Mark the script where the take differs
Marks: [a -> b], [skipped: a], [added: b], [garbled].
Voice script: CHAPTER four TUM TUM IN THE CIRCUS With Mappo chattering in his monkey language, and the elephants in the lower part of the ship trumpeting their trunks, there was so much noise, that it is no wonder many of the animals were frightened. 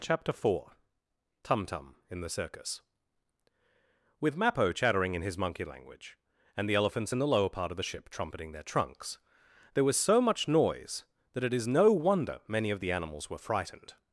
CHAPTER four TUM TUM IN THE CIRCUS With Mappo chattering in his monkey language, and the elephants in the lower part of the ship trumpeting their trunks, there was so much noise, that it is no wonder many of the animals were frightened.